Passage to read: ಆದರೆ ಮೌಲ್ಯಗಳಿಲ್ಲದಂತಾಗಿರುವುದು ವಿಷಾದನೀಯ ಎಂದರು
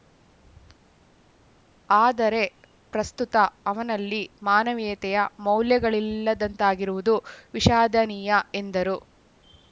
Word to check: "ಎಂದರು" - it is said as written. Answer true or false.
true